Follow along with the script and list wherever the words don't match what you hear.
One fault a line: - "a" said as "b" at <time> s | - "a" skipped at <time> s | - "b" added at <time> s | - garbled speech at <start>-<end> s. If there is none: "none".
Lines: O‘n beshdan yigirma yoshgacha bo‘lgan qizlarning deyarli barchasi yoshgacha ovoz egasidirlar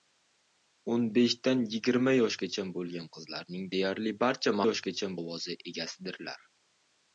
none